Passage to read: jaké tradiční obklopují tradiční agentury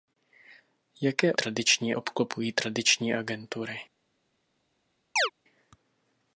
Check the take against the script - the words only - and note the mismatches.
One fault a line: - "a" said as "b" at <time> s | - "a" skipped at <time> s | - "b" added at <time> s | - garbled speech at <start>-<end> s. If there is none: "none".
none